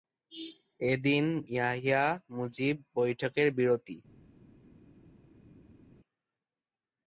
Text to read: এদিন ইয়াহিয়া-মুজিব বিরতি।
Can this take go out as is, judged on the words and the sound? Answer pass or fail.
fail